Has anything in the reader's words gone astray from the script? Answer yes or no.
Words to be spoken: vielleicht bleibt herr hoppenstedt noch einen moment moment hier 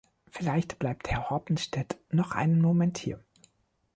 yes